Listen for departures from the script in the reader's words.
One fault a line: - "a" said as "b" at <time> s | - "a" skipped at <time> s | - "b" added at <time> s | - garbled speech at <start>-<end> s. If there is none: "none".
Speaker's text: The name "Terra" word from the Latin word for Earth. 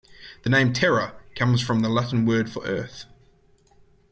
- "word" said as "comes" at 1.4 s